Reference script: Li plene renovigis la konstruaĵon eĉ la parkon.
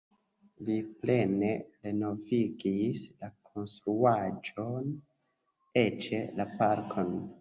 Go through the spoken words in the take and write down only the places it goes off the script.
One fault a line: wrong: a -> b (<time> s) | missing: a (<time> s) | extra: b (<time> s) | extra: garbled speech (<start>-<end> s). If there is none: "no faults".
no faults